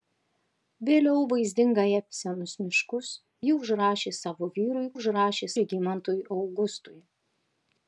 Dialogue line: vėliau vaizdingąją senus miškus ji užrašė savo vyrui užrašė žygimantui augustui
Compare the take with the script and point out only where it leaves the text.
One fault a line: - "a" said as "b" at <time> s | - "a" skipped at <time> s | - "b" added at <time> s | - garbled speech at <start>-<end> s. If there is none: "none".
none